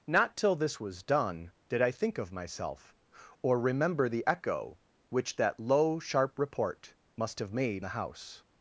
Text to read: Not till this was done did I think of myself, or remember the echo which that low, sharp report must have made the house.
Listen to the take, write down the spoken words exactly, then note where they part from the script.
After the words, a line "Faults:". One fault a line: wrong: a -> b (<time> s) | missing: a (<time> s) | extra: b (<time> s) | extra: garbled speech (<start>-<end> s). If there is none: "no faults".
Not till this was done did I think of myself, or remember the echo which that low, sharp report must have made the house.
Faults:
no faults